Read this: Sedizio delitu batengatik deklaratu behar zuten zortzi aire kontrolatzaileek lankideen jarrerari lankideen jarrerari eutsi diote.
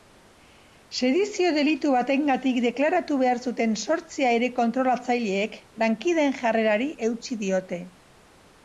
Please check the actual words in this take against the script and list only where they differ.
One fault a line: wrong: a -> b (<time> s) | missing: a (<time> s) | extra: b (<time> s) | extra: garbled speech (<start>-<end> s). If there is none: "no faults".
missing: lankideen jarrerari (6.9 s)